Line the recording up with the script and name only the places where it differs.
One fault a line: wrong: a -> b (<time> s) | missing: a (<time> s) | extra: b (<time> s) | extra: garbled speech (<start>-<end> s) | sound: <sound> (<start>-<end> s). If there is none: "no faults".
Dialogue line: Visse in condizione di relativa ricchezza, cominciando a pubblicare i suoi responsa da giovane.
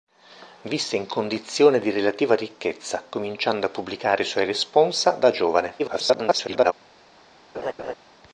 extra: garbled speech (5.8-6.7 s)
sound: laugh (7.5-7.9 s)